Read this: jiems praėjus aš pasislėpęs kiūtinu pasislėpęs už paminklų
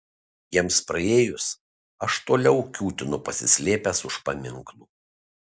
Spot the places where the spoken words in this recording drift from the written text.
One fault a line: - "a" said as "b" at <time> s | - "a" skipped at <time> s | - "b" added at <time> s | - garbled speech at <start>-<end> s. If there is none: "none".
- "pasislėpęs" said as "toliau" at 2.3 s